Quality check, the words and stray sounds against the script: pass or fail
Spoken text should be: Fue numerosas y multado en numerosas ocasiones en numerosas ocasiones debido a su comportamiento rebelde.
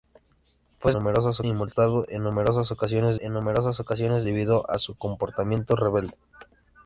pass